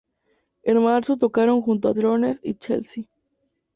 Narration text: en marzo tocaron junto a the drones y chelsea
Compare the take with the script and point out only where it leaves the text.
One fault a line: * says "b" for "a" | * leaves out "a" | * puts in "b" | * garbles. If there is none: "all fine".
* leaves out "the"